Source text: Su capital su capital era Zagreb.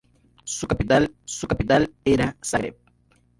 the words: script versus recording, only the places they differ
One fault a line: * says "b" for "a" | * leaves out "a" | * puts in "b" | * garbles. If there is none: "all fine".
all fine